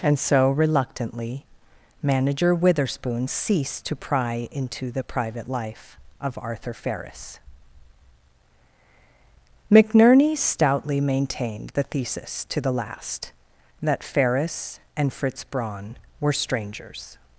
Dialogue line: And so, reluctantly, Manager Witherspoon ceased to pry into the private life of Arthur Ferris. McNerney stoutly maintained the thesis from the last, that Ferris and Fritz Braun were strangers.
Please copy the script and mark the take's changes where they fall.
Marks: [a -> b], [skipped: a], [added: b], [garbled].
And so, reluctantly, Manager Witherspoon ceased to pry into the private life of Arthur Ferris. McNerney stoutly maintained the thesis [from -> to] the last, that Ferris and Fritz Braun were strangers.